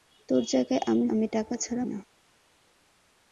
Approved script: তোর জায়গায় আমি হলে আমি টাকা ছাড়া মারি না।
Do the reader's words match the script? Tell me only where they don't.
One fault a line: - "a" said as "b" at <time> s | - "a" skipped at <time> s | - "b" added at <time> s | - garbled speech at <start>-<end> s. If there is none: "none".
- "হলে" skipped at 1.1 s
- "মারি" skipped at 1.8 s